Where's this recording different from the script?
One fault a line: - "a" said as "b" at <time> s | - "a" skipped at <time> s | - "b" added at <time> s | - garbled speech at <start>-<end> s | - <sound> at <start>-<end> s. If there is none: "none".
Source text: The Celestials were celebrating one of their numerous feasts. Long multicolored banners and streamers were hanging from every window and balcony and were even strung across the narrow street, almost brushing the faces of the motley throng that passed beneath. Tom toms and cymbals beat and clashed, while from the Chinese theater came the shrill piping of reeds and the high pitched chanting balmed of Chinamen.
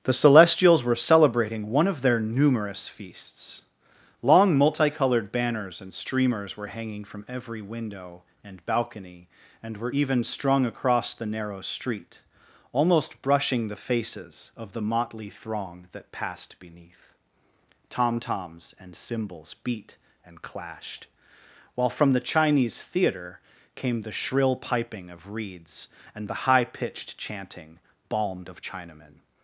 none